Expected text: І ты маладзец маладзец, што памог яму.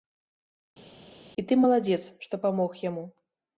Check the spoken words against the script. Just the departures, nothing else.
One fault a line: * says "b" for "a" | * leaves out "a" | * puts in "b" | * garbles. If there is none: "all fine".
* leaves out "маладзец"